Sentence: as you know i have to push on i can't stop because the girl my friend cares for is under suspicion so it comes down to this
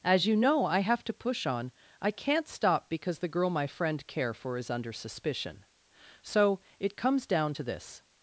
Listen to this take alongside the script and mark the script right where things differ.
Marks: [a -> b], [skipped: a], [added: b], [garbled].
as you know i have to push on i can't stop because the girl my friend [cares -> care] for is under suspicion so it comes down to this